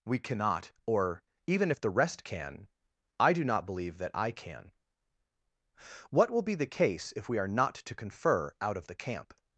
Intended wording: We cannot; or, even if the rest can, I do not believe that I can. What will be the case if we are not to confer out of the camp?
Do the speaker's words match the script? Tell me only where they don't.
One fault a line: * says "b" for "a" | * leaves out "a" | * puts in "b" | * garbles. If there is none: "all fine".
all fine